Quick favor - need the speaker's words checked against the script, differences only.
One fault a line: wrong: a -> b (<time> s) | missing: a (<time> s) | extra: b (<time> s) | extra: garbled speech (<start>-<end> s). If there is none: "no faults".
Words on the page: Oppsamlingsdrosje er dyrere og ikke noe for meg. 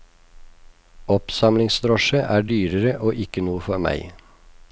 no faults